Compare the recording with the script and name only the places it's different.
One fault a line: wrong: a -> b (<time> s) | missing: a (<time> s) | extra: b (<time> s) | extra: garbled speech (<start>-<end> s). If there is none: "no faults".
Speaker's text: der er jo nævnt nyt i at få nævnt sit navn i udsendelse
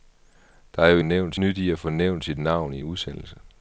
no faults